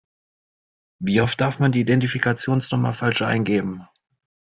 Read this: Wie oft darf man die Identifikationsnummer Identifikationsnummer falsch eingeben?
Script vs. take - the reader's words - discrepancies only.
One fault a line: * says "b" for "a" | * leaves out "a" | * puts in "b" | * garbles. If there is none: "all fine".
* leaves out "Identifikationsnummer"